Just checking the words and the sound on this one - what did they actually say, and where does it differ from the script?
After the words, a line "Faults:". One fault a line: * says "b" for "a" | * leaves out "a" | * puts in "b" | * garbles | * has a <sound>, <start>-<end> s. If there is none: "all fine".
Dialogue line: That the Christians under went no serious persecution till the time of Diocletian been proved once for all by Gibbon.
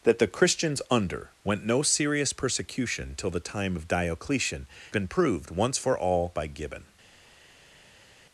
That the Christians under went no serious persecution till the time of Diocletian been proved once for all by Gibbon.
Faults:
all fine